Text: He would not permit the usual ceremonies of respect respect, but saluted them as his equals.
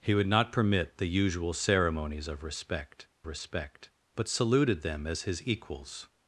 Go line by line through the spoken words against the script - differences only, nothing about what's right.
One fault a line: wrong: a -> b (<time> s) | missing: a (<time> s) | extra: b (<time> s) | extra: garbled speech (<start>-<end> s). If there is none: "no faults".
no faults